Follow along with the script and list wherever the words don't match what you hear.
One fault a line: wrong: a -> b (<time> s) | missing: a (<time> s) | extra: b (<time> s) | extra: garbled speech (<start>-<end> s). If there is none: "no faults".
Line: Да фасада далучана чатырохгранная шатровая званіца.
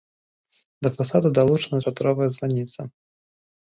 missing: чатырохгранная (1.8 s)